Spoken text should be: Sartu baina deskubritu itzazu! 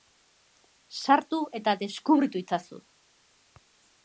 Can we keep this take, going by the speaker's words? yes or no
no